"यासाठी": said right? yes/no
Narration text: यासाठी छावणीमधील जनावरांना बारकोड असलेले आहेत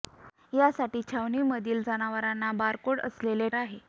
yes